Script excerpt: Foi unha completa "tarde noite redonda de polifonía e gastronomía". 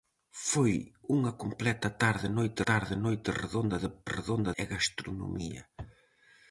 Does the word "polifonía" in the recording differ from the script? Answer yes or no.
yes